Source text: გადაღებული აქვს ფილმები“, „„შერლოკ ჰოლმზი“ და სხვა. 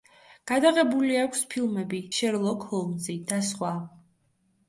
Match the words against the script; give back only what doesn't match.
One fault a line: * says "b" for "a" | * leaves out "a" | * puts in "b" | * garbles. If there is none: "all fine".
all fine